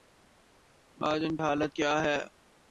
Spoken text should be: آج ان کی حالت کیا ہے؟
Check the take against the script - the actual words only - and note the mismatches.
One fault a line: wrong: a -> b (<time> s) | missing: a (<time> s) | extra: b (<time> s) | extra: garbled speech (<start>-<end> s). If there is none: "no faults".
missing: کی (1.4 s)